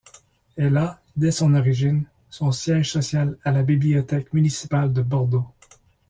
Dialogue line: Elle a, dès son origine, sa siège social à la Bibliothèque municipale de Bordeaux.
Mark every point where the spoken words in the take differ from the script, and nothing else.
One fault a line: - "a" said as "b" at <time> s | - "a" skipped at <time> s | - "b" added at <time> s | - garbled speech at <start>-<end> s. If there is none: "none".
- "sa" said as "son" at 2.3 s